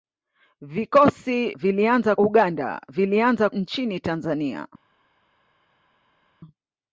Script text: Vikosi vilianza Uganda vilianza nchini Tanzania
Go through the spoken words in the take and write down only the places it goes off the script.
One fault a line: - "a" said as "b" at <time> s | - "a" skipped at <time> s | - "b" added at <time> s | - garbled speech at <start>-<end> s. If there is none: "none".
none